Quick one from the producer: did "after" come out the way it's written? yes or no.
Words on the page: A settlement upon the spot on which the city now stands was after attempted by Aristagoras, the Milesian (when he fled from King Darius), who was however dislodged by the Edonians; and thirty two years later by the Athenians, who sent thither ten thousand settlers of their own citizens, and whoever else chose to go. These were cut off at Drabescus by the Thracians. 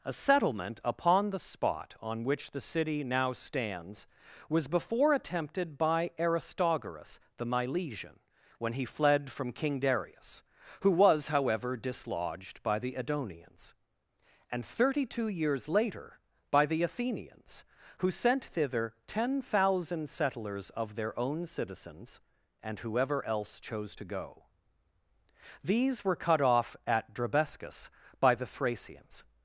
no